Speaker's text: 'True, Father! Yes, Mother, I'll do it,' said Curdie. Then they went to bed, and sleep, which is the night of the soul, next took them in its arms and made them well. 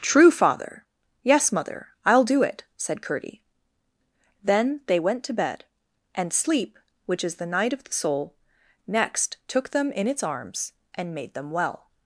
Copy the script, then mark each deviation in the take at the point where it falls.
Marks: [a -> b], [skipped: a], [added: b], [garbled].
'True, Father! Yes, Mother, I'll do it,' said Curdie. Then they went to bed, and sleep, which is the night of the soul, next took them in its arms and made them well.